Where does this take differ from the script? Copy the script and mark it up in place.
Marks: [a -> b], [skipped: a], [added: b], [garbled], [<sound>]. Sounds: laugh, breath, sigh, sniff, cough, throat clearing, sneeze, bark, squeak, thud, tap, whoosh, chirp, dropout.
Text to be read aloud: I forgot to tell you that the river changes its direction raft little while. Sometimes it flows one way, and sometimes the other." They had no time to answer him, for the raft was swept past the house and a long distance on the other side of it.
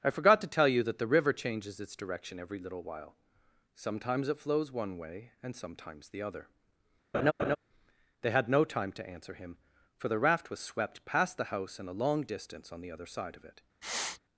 I forgot to tell you that the river changes its direction [raft -> every] little while. Sometimes it flows one way, and sometimes the other." [laugh] They had no time to answer him, for the raft was swept past the house and a long distance on the other side of it. [sniff]